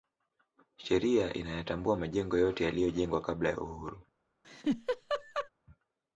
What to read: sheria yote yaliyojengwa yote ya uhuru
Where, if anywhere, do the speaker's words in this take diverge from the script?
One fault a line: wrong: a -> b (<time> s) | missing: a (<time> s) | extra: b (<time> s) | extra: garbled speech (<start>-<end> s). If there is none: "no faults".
extra: inayatambua majengo (1.3 s)
wrong: yote -> kabla (3.2 s)